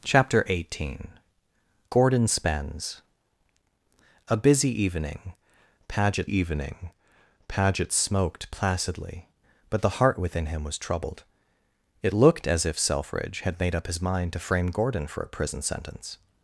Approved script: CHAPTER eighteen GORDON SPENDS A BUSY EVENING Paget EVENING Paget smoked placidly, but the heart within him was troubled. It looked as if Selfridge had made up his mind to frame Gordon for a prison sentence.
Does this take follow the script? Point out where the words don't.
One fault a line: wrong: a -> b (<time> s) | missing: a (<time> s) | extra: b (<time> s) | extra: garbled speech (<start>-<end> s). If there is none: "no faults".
no faults